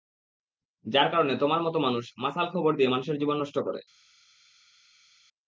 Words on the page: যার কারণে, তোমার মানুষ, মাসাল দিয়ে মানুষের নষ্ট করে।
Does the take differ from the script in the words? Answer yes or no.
yes